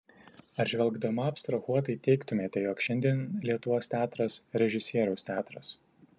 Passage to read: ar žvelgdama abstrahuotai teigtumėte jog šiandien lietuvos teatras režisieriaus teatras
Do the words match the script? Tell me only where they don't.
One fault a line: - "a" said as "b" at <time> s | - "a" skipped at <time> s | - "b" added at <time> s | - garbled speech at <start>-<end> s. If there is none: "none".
none